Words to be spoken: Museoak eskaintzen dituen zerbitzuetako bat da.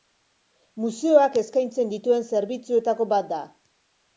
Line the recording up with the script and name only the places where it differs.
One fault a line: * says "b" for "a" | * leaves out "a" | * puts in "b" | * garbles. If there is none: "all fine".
all fine